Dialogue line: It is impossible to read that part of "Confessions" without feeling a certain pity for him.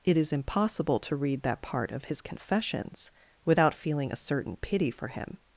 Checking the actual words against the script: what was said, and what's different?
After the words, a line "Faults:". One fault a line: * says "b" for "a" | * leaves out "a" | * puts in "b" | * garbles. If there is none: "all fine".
It is impossible to read that part of his "Confessions" without feeling a certain pity for him.
Faults:
* puts in "his"